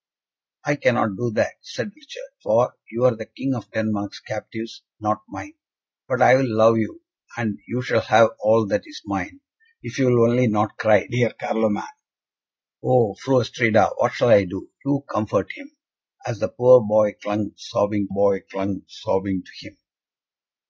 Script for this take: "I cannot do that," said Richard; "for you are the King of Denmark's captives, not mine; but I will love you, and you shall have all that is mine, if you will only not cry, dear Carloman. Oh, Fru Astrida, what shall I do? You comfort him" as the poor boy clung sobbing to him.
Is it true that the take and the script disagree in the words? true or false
true